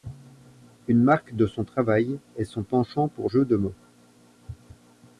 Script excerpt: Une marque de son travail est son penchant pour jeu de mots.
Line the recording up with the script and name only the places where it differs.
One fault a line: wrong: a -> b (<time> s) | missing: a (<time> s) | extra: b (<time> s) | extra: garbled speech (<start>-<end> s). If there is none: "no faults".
no faults